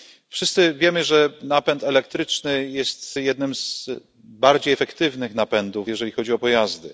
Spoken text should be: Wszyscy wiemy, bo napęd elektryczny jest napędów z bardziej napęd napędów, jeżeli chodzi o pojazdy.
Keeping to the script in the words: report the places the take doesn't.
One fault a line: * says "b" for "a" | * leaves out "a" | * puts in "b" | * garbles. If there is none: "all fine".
* says "że" for "bo"
* says "jednym" for "napędów"
* says "efektywnych" for "napęd"